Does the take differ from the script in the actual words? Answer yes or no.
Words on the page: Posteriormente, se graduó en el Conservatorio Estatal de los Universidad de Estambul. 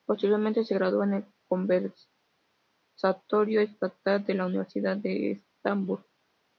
yes